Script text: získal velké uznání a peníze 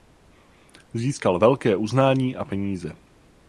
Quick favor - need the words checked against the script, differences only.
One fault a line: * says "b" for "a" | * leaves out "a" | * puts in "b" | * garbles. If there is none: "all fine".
all fine